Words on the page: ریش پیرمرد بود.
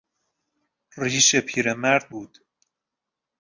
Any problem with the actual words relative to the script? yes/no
no